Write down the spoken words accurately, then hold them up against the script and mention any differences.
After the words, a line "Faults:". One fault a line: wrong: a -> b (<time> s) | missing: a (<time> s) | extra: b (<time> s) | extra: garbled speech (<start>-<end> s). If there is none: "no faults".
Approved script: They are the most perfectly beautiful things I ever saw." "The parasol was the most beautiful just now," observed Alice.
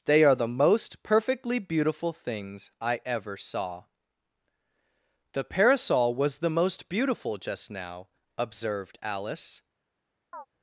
They are the most perfectly beautiful things I ever saw." "The parasol was the most beautiful just now," observed Alice.
Faults:
no faults